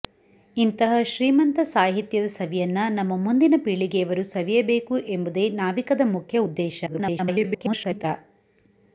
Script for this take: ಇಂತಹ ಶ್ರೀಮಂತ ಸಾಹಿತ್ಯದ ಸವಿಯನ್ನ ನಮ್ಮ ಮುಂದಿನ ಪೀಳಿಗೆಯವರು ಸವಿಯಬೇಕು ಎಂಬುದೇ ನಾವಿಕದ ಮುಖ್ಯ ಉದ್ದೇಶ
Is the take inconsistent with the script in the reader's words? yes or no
yes